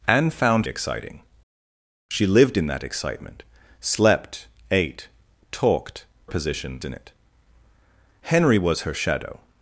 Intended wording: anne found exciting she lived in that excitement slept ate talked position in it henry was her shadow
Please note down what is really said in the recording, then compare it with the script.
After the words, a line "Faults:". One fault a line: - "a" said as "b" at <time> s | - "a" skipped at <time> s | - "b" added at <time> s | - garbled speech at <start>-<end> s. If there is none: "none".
anne found exciting she lived in that excitement slept ate talked position in it henry was her shadow
Faults:
none